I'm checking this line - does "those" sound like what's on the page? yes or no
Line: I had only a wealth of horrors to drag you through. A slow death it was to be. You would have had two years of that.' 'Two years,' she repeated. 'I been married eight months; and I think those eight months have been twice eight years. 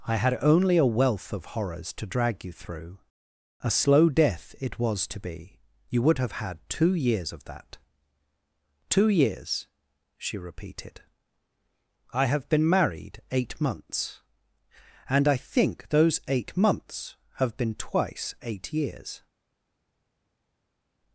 yes